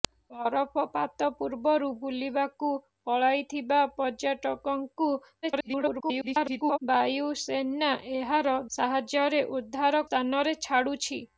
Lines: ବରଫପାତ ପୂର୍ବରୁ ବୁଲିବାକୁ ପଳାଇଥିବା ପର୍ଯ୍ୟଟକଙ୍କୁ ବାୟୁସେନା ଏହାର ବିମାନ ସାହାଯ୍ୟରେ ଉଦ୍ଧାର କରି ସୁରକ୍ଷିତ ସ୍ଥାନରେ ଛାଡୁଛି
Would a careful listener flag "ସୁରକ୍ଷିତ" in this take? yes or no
yes